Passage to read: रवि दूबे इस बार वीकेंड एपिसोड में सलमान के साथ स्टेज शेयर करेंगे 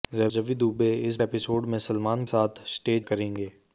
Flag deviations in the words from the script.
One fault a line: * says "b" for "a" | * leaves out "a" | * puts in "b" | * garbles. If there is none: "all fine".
* leaves out "बार वीकेंड"
* leaves out "के"
* leaves out "शेयर"